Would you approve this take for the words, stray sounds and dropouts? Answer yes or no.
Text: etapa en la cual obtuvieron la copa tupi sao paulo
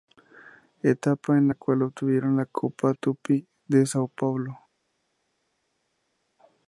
no